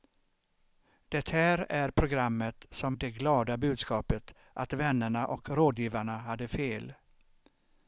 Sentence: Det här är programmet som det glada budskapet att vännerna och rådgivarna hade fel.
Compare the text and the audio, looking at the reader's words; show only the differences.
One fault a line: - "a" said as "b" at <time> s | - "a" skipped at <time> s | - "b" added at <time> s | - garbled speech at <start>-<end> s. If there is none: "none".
none